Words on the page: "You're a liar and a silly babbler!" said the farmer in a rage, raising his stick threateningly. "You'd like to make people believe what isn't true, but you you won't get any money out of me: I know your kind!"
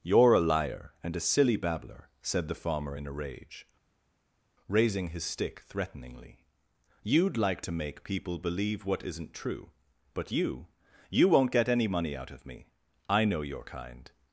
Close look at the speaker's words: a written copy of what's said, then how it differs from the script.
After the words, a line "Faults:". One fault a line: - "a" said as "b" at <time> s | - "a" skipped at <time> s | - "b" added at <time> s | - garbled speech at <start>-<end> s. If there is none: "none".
"You're a liar and a silly babbler!" said the farmer in a rage, raising his stick threateningly. "You'd like to make people believe what isn't true, but you you won't get any money out of me: I know your kind!"
Faults:
none